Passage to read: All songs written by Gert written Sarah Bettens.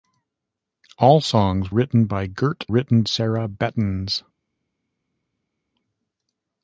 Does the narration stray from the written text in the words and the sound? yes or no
no